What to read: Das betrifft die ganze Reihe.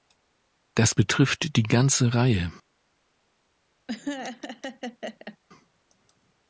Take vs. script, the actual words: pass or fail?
pass